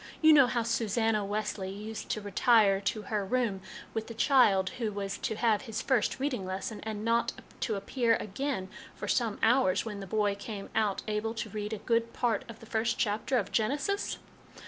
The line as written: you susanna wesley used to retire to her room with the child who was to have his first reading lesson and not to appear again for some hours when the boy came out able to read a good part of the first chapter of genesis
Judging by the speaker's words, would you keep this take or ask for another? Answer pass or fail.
fail